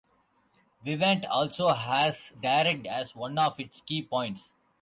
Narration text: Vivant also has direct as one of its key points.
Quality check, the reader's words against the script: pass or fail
pass